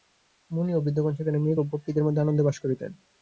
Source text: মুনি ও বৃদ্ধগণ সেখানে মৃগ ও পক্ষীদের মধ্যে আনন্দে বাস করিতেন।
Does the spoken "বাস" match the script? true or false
true